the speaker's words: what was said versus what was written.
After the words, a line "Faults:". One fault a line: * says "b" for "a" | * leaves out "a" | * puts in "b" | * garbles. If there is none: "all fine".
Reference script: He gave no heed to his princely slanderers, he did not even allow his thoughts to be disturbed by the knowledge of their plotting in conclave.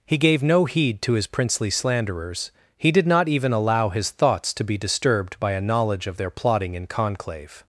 He gave no heed to his princely slanderers, he did not even allow his thoughts to be disturbed by a knowledge of their plotting in conclave.
Faults:
* says "a" for "the"